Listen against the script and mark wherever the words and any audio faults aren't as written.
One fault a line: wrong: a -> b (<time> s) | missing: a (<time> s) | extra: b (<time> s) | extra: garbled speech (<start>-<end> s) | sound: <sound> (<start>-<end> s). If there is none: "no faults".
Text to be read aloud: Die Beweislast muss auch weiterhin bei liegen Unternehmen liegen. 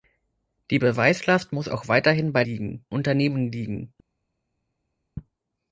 no faults